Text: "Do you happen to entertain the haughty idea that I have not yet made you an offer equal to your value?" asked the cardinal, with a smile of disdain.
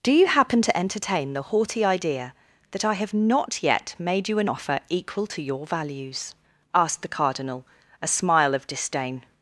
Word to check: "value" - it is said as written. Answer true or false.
false